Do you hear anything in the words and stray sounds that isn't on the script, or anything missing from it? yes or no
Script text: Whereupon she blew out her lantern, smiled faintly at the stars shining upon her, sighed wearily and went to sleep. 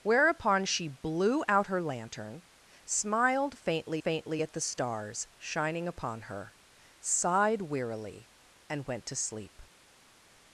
yes